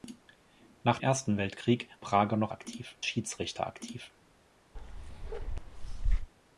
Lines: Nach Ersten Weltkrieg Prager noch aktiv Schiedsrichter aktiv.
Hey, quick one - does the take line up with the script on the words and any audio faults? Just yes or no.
no